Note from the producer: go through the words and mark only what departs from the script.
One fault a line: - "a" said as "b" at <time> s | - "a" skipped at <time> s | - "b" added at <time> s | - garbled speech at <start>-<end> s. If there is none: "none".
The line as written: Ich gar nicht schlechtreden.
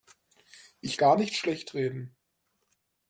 none